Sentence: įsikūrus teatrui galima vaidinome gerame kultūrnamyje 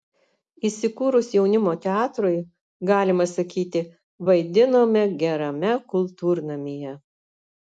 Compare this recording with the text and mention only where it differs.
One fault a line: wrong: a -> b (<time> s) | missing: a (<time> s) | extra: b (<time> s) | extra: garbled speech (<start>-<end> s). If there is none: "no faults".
extra: jaunimo (1.3 s)
extra: sakyti (3.3 s)